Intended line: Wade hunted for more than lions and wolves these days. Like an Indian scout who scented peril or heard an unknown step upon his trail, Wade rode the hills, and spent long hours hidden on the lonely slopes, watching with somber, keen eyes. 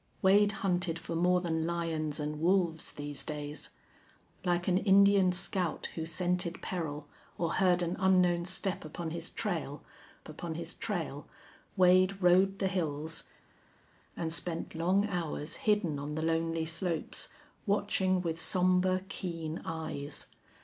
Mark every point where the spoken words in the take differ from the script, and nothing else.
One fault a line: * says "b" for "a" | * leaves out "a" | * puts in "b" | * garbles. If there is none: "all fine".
* puts in "upon his trail"